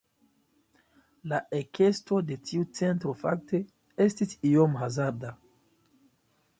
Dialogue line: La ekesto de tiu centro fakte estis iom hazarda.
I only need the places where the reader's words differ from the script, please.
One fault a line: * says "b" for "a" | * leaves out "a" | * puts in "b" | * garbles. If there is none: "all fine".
all fine